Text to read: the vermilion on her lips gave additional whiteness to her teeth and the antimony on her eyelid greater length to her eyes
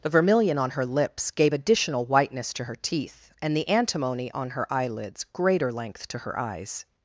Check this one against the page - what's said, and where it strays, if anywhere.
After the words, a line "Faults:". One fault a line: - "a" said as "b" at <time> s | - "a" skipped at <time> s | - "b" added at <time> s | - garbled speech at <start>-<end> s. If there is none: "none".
the vermilion on her lips gave additional whiteness to her teeth and the antimony on her eyelids greater length to her eyes
Faults:
- "eyelid" said as "eyelids" at 4.7 s